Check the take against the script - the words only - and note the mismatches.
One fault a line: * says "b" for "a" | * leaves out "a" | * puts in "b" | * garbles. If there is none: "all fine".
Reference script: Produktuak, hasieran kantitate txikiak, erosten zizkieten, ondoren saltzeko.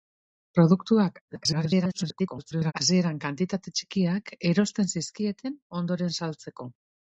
* garbles